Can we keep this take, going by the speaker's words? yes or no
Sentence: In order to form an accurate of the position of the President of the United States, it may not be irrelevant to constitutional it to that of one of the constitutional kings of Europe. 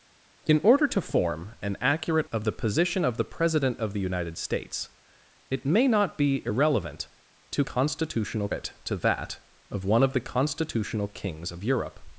yes